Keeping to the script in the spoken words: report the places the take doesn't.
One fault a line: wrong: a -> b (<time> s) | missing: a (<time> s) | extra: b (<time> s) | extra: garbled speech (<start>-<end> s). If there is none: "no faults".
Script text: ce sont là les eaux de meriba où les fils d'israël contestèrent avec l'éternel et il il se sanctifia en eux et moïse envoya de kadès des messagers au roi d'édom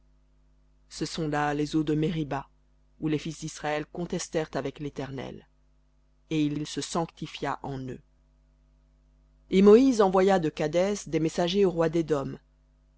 no faults